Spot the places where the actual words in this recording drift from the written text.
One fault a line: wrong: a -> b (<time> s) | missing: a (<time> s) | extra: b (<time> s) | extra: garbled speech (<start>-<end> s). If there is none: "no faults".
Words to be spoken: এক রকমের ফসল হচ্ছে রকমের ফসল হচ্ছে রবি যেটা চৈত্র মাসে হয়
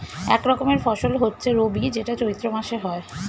missing: রকমের ফসল হচ্ছে (1.5 s)